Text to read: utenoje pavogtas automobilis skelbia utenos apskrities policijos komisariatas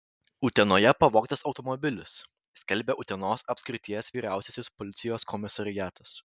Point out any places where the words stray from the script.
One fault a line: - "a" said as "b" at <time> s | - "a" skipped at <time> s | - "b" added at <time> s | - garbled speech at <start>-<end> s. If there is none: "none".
- "vyriausiasis" added at 4.2 s